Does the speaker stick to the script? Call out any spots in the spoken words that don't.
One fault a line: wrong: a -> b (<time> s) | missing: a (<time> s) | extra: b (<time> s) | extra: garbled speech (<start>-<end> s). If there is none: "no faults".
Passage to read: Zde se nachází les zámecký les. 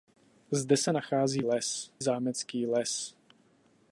no faults